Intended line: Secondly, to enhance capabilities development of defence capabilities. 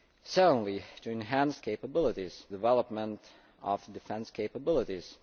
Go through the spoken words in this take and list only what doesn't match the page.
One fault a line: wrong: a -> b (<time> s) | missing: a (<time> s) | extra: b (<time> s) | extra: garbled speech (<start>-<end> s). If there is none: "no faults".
no faults